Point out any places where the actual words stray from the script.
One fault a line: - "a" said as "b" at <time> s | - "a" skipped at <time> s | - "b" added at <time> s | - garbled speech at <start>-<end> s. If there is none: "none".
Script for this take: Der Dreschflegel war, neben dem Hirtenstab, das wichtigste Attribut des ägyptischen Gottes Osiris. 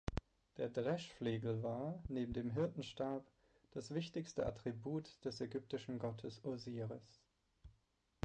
none